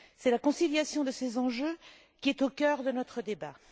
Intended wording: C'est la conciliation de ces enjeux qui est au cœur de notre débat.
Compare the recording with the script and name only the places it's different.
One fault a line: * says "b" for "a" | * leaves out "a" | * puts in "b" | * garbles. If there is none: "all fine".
all fine